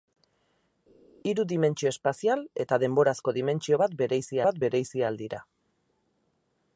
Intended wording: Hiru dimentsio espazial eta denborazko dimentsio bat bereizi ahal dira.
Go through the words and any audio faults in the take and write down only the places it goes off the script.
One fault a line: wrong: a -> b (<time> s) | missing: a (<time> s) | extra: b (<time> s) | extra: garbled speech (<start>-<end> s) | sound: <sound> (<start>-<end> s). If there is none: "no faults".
extra: bat bereizi (4.5 s)